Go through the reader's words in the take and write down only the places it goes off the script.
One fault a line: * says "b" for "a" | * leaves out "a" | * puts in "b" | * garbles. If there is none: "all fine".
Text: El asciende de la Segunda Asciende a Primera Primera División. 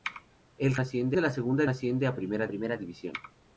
all fine